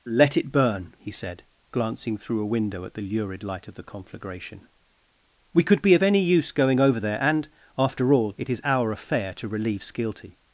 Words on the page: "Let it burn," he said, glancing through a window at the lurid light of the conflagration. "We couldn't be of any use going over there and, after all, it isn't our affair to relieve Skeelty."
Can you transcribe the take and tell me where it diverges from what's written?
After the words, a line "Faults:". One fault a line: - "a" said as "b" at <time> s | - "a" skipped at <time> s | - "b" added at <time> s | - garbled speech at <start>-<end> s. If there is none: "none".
"Let it burn," he said, glancing through a window at the lurid light of the conflagration. "We could be of any use going over there and, after all, it is our affair to relieve Skeelty."
Faults:
- "couldn't" said as "could" at 5.6 s
- "isn't" said as "is" at 8.5 s